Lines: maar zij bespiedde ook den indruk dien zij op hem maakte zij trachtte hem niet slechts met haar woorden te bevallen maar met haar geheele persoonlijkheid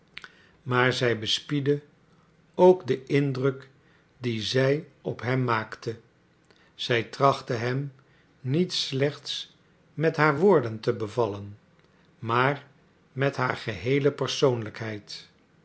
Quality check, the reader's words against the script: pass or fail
pass